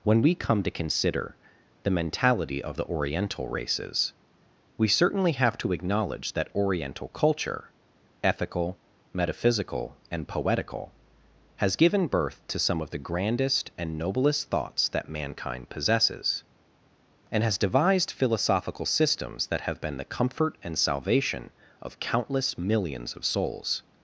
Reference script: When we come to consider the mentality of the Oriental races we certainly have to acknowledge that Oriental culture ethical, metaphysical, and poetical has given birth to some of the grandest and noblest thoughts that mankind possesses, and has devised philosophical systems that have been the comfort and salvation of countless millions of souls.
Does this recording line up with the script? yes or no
yes